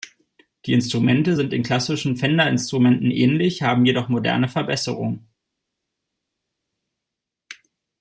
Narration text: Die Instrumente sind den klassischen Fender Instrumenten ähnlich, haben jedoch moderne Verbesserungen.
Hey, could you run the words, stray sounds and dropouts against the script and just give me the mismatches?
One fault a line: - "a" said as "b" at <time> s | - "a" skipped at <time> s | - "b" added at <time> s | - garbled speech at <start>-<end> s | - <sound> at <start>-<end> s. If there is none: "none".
none